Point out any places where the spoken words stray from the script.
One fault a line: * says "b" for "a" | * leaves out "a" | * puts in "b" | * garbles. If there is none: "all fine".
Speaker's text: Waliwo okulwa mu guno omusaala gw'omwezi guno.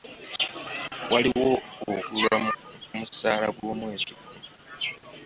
all fine